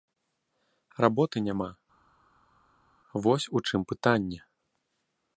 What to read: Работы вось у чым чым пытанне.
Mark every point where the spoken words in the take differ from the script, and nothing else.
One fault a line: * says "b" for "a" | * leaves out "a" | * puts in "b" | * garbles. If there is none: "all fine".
* puts in "няма"
* leaves out "чым"